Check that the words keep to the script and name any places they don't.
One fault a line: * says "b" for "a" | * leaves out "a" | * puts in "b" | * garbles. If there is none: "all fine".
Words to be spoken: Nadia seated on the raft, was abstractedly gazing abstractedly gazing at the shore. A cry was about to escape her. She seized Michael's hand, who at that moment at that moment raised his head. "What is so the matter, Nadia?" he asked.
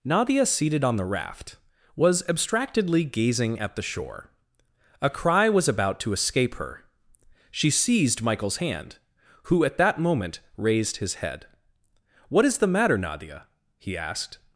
* leaves out "abstractedly gazing"
* leaves out "at that moment"
* leaves out "so"